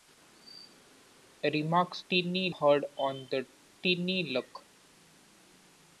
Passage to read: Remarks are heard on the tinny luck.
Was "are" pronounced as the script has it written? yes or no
no